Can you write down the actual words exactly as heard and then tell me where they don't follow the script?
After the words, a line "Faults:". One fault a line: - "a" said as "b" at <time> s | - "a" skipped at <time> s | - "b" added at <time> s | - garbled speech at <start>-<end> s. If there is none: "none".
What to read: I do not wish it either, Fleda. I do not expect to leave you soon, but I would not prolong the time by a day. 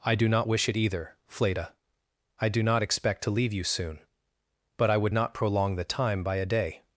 I do not wish it either, Fleda. I do not expect to leave you soon, but I would not prolong the time by a day.
Faults:
none